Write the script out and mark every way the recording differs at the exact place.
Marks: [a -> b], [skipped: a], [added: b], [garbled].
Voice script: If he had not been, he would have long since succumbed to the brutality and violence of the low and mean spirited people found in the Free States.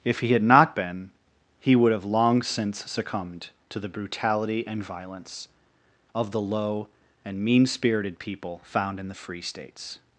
If he had not been, he would have long since succumbed to the brutality and violence of the low and mean spirited people found in the Free States.